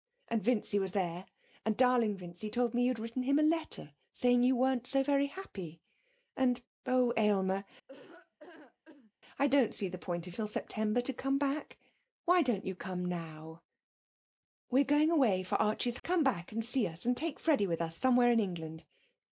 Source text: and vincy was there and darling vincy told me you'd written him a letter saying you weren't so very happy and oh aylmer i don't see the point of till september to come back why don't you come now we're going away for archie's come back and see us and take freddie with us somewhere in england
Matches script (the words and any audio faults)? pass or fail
fail